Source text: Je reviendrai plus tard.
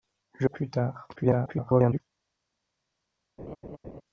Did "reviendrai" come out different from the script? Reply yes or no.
yes